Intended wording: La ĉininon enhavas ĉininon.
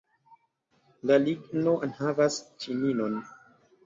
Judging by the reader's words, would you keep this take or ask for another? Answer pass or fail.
fail